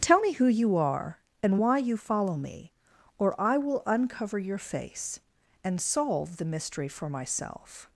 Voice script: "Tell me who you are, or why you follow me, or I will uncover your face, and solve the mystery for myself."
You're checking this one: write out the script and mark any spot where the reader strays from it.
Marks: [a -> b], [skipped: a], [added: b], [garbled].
"Tell me who you are, [or -> and] why you follow me, or I will uncover your face, and solve the mystery for myself."